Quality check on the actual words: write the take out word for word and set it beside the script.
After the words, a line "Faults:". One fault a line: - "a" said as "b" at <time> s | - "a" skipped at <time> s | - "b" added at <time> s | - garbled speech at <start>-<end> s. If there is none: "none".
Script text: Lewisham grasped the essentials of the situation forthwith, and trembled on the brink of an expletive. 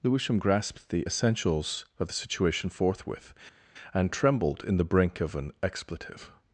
Lewisham grasped the essentials of the situation forthwith, and trembled in the brink of an expletive.
Faults:
- "on" said as "in" at 4.7 s